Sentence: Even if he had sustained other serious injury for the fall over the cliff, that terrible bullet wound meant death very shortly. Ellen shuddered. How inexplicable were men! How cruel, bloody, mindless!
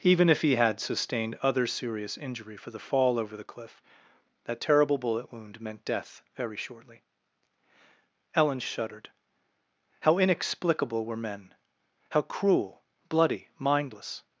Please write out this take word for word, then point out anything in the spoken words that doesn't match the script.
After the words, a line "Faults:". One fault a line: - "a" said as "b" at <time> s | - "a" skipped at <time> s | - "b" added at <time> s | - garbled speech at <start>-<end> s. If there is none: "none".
Even if he had sustained other serious injury for the fall over the cliff, that terrible bullet wound meant death very shortly. Ellen shuddered. How inexplicable were men! How cruel, bloody, mindless!
Faults:
none